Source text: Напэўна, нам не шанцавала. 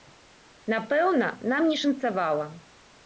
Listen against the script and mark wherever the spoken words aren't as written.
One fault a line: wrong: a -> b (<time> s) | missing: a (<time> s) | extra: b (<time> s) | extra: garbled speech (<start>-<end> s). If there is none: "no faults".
no faults